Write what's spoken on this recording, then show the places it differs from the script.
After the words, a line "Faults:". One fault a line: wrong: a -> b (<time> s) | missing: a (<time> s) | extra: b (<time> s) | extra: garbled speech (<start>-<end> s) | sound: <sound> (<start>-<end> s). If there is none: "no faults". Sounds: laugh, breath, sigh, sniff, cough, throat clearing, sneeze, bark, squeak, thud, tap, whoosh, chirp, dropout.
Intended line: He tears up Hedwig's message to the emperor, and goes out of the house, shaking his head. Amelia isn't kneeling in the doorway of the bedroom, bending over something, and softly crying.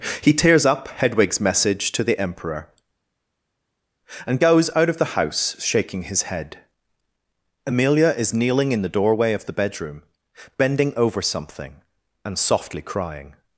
He tears up Hedwig's message to the emperor, and goes out of the house, shaking his head. Amelia is kneeling in the doorway of the bedroom, bending over something, and softly crying.
Faults:
wrong: isn't -> is (8.2 s)